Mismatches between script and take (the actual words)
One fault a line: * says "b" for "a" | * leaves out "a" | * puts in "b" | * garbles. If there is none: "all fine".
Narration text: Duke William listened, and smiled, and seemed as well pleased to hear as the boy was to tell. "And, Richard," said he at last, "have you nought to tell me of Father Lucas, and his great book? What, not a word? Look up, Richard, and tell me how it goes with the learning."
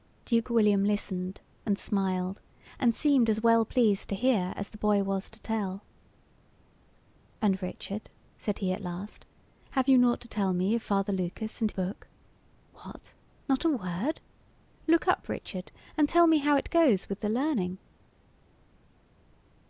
* leaves out "his great"